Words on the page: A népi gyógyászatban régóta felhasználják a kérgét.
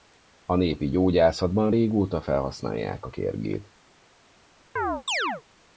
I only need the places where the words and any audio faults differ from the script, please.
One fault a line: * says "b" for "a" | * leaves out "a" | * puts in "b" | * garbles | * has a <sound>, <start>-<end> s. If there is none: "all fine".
* has a chirp, 4.8-5.4 s